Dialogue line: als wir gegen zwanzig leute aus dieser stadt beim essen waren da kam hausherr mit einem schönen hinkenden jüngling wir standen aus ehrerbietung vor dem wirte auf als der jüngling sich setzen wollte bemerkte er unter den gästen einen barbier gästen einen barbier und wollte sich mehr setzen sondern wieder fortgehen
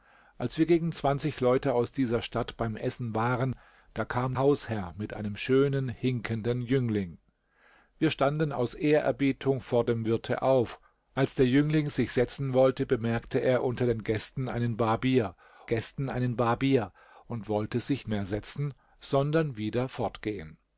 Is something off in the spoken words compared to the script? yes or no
no